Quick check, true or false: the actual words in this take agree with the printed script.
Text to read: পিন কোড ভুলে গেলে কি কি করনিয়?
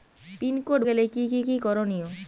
false